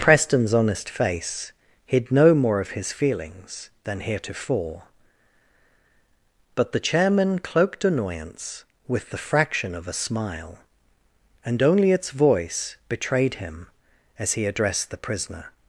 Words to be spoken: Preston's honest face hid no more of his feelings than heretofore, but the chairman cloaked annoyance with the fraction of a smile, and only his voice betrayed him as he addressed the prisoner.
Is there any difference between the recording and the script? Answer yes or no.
yes